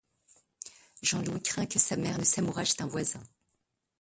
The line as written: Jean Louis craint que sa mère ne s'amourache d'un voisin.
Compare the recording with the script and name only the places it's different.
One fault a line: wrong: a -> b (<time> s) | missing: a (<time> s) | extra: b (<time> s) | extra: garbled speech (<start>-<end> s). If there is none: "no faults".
no faults